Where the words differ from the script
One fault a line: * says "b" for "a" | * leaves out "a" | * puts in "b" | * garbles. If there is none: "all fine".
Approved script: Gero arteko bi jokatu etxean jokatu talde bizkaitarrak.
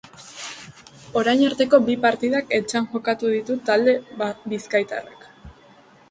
* says "Orain" for "Gero"
* says "partidak" for "jokatu"
* puts in "ditu"